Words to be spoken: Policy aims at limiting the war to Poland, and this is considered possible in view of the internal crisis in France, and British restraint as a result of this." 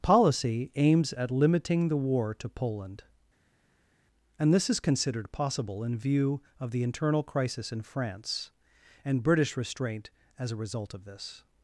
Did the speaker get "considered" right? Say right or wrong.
right